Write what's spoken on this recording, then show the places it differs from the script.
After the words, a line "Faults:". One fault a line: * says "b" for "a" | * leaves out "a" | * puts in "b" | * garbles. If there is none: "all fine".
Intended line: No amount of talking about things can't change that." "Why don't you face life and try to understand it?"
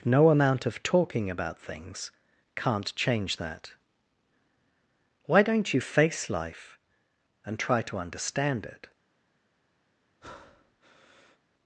No amount of talking about things can't change that." "Why don't you face life and try to understand it?"
Faults:
all fine